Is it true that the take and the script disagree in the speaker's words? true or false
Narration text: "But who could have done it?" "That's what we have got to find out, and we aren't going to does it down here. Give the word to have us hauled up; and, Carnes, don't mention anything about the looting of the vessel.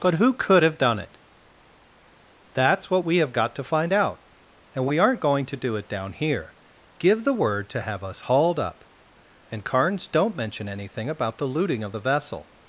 true